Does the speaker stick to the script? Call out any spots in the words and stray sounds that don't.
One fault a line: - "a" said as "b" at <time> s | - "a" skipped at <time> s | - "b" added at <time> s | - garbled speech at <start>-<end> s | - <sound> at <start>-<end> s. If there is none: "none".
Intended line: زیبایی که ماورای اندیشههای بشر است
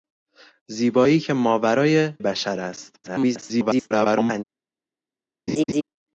- "اندیشههای" skipped at 2.1 s
- garbled speech at 3.0-4.4 s
- laugh at 5.5-5.8 s